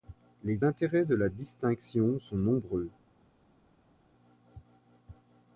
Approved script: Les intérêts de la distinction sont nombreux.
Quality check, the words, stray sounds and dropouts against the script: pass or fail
pass